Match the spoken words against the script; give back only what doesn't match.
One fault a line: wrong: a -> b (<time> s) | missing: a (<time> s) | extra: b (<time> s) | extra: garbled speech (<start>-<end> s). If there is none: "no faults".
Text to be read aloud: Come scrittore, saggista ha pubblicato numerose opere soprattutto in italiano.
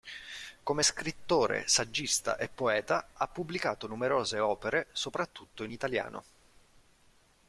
extra: e poeta (2.4 s)